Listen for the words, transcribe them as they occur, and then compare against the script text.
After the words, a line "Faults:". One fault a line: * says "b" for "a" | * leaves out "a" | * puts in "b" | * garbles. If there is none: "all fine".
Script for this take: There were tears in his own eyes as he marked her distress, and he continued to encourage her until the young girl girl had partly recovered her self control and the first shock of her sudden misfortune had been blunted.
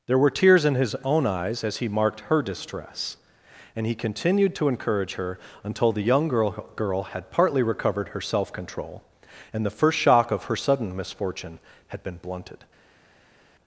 There were tears in his own eyes as he marked her distress, and he continued to encourage her until the young girl girl had partly recovered her self control and the first shock of her sudden misfortune had been blunted.
Faults:
all fine